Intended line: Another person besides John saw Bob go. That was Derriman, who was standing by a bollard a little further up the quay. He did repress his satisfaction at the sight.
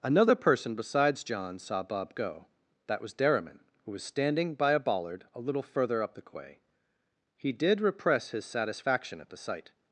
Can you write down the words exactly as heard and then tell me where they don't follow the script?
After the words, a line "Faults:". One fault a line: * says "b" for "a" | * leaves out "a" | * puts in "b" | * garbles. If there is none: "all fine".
Another person besides John saw Bob go. That was Derriman, who was standing by a bollard a little further up the quay. He did repress his satisfaction at the sight.
Faults:
all fine